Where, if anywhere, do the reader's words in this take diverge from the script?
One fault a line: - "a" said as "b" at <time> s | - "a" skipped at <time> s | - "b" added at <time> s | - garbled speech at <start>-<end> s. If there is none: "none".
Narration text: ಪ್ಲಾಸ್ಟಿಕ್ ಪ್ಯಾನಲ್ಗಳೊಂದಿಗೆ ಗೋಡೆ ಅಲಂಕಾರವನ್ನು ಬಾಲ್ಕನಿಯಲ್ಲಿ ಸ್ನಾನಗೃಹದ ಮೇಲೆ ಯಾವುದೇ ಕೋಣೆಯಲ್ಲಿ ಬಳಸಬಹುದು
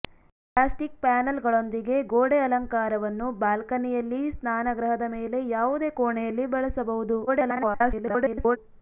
- garbled speech at 7.3-8.6 s